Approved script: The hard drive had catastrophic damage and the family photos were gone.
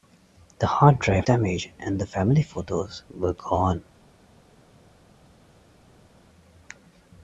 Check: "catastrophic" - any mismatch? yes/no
yes